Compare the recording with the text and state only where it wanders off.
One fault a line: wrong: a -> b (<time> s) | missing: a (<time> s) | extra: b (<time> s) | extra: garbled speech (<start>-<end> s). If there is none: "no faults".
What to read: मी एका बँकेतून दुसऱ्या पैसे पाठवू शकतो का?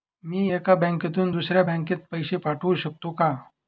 extra: बँकेत (1.6 s)